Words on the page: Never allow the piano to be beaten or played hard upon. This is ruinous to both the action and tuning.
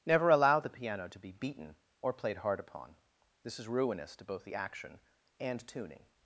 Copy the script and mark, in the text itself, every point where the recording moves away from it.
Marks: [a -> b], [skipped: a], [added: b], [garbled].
Never allow the piano to be beaten or played hard upon. This is ruinous to both the action and tuning.